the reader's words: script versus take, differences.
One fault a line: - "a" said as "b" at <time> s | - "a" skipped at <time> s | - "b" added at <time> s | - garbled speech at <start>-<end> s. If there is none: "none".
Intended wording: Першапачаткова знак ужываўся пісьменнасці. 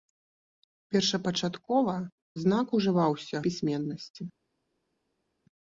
none